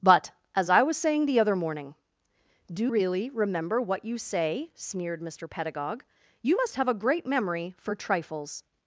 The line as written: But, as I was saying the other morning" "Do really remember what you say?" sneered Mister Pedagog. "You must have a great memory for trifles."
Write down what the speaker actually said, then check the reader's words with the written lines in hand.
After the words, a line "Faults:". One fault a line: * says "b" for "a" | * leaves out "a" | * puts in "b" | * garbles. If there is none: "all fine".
But, as I was saying the other morning" "Do really remember what you say?" sneered Mister Pedagog. "You must have a great memory for trifles."
Faults:
all fine